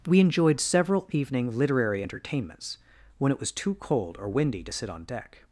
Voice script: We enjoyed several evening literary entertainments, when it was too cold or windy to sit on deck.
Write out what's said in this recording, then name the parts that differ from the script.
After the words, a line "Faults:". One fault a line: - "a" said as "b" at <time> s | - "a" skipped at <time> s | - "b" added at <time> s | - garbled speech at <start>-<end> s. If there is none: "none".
We enjoyed several evening literary entertainments, when it was too cold or windy to sit on deck.
Faults:
none